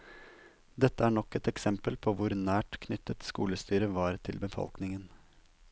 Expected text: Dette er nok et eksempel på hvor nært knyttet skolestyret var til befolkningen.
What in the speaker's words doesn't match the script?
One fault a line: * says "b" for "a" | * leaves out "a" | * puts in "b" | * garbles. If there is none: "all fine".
all fine